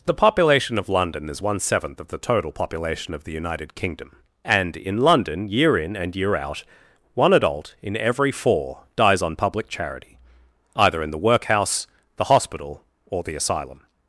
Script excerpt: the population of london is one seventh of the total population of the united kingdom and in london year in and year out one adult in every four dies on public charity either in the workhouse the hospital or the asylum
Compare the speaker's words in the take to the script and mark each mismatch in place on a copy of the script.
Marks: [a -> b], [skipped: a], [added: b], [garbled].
the population of london is one seventh of the total population of the united kingdom and in london year in and year out one adult in every four dies on public charity either in the workhouse the hospital or the asylum